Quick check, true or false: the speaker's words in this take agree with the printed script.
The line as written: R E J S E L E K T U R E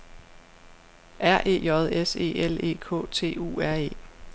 true